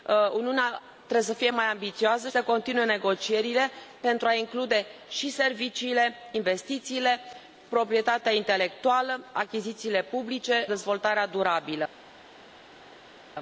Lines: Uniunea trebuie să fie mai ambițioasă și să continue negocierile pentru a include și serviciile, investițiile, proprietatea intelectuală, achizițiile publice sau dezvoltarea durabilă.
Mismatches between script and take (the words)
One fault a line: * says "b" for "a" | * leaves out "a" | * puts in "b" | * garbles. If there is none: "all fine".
* leaves out "și"
* leaves out "sau"